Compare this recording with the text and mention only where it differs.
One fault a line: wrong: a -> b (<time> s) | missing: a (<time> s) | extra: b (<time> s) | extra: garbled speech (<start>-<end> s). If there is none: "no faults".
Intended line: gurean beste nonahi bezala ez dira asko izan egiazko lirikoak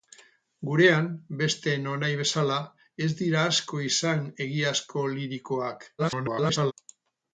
extra: garbled speech (6.0-6.7 s)